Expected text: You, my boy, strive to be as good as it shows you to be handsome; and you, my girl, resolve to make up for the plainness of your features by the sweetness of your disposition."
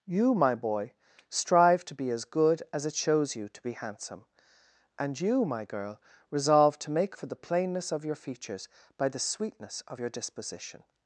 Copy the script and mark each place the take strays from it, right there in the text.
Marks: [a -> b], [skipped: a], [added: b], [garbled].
You, my boy, strive to be as good as it shows you to be handsome; and you, my girl, resolve to make [skipped: up] for the plainness of your features by the sweetness of your disposition."